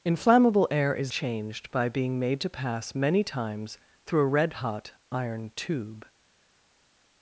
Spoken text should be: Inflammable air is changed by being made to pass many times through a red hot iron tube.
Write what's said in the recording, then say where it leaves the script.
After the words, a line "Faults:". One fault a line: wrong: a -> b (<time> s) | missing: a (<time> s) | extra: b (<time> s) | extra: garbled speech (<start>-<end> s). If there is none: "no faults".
Inflammable air is changed by being made to pass many times through a red hot iron tube.
Faults:
no faults